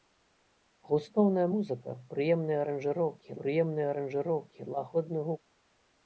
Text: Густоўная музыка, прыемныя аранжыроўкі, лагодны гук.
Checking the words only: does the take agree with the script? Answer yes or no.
no